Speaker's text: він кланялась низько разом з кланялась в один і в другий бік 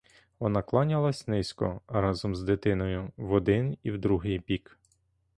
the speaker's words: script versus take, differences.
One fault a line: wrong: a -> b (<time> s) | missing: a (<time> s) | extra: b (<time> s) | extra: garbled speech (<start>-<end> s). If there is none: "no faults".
wrong: він -> вона (0.4 s)
wrong: кланялась -> дитиною (2.4 s)